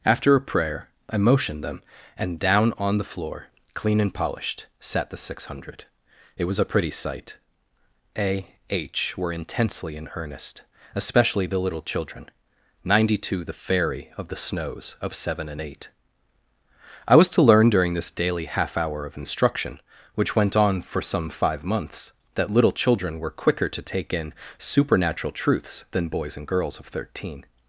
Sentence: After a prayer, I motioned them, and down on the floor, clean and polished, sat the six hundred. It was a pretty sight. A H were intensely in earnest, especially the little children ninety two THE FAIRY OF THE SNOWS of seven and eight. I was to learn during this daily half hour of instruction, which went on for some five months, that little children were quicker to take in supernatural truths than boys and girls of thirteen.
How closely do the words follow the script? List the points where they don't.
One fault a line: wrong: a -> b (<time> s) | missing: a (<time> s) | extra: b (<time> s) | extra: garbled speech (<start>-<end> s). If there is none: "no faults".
no faults